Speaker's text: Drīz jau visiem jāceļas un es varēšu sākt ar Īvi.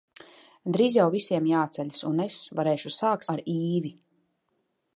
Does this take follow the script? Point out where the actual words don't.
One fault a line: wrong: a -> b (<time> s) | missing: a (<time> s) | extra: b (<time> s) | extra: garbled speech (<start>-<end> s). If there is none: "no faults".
no faults